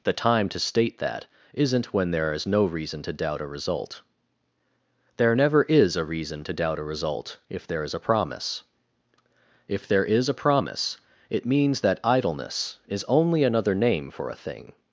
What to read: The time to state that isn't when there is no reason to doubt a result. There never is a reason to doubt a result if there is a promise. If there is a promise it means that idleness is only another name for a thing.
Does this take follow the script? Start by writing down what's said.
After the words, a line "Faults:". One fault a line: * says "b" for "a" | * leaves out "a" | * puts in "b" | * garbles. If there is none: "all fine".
The time to state that isn't when there is no reason to doubt a result. There never is a reason to doubt a result if there is a promise. If there is a promise it means that idleness is only another name for a thing.
Faults:
all fine